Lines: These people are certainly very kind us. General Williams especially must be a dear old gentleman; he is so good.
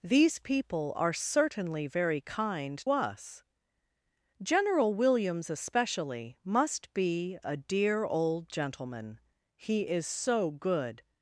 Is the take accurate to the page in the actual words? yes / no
yes